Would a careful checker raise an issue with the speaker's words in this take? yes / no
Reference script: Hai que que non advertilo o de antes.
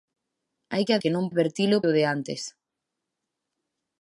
no